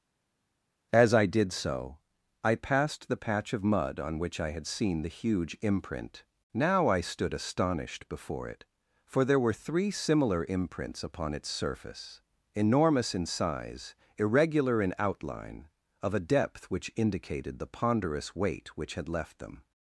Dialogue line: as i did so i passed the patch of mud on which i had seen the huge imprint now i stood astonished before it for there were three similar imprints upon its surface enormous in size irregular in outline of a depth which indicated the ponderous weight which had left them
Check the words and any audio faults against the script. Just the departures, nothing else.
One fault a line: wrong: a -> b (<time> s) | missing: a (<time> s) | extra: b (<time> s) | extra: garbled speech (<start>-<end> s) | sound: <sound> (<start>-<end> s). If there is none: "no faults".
no faults